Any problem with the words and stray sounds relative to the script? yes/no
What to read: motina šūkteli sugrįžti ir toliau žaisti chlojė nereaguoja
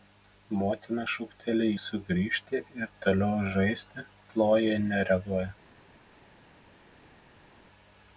no